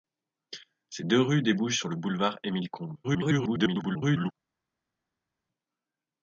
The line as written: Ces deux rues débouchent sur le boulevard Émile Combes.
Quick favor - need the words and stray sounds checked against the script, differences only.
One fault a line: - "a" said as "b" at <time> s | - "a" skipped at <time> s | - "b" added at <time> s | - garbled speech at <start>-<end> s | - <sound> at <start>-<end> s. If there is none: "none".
- garbled speech at 3.0-4.3 s